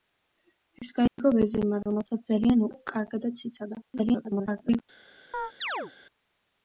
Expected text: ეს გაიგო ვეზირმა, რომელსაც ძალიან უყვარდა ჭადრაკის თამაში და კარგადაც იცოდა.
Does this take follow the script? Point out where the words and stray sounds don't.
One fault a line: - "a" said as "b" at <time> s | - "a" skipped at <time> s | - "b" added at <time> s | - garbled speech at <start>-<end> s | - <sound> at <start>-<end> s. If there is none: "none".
- dropout at 1.1-1.2 s
- "უყვარდა ჭადრაკის თამაში" skipped at 2.6 s
- garbled speech at 3.9-4.8 s
- chirp at 5.3-5.9 s